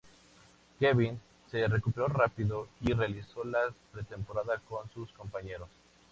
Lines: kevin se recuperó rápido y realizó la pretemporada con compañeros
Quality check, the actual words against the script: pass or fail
fail